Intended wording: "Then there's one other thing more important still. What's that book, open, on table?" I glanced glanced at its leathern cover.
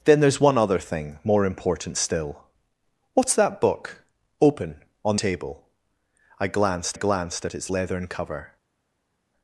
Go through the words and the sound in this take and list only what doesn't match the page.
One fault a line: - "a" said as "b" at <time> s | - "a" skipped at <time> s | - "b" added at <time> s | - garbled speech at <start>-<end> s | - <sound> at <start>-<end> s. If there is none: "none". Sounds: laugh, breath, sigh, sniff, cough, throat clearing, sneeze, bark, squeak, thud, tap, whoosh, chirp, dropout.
none